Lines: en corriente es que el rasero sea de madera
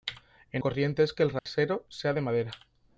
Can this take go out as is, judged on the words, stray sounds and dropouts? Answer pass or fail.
fail